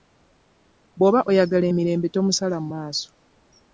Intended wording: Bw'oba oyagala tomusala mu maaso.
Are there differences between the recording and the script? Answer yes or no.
yes